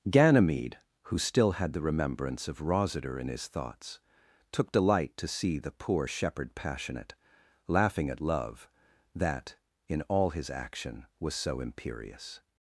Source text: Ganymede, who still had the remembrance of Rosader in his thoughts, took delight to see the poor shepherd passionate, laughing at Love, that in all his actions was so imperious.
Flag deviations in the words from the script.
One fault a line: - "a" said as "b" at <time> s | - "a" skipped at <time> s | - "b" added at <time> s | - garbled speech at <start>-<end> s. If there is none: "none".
- "actions" said as "action" at 10.5 s